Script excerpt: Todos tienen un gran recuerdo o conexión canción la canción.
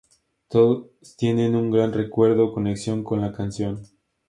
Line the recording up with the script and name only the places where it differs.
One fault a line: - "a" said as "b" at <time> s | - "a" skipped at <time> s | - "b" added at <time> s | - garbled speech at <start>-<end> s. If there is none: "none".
- "canción" said as "con" at 3.0 s